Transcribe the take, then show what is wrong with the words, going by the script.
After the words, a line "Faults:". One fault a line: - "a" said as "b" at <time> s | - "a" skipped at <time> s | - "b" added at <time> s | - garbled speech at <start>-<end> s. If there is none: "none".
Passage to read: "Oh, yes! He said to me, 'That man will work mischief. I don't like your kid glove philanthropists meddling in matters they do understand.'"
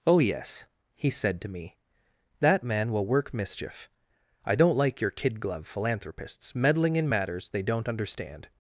"Oh, yes! He said to me, 'That man will work mischief. I don't like your kid glove philanthropists meddling in matters they don't understand.'"
Faults:
- "do" said as "don't" at 7.6 s